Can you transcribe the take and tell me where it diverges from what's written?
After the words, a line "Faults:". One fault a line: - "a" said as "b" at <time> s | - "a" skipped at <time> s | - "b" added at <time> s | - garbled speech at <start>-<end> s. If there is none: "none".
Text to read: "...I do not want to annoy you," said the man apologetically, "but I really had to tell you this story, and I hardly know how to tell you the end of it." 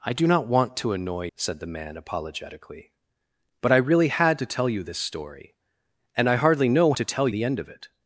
"...I do not want to annoy," said the man apologetically, "but I really had to tell you this story, and I hardly know to tell the end of it."
Faults:
- "you" skipped at 1.3 s
- "how" skipped at 6.9 s
- "you" skipped at 7.3 s